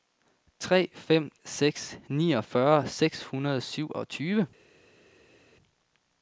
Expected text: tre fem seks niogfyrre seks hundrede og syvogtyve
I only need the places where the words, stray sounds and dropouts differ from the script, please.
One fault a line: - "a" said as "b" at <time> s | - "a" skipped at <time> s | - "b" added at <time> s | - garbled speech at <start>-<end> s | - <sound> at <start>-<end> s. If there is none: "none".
none